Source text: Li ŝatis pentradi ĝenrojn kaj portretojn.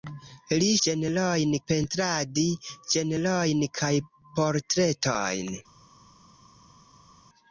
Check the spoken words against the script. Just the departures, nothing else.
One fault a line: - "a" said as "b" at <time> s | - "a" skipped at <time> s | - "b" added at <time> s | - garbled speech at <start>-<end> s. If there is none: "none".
- "ŝatis" said as "ĝenrojn" at 0.9 s